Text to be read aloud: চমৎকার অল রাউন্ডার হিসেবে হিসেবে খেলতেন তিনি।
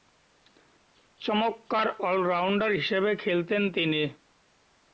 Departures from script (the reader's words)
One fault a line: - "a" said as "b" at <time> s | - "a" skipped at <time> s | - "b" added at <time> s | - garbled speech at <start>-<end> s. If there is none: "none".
- "হিসেবে" skipped at 3.1 s